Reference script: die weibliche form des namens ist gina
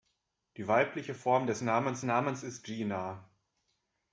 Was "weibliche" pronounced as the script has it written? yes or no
yes